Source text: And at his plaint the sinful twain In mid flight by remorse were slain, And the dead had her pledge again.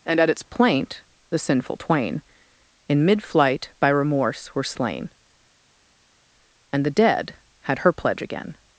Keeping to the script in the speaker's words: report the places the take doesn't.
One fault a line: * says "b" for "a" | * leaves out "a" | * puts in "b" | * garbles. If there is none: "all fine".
* says "its" for "his"